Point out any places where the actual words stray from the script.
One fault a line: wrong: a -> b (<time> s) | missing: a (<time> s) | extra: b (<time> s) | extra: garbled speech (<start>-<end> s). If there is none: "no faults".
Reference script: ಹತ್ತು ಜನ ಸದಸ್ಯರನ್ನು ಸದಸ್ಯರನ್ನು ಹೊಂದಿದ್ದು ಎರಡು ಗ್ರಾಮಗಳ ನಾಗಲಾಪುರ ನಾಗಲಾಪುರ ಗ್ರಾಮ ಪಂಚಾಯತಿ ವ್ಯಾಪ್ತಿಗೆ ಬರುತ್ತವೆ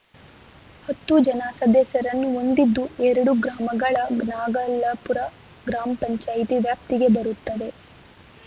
missing: ಸದಸ್ಯರನ್ನು (2.3 s)
missing: ನಾಗಲಾಪುರ (5.2 s)